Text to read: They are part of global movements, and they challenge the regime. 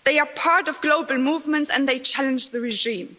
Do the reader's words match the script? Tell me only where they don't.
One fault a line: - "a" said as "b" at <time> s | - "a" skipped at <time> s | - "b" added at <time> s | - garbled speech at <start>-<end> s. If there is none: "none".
none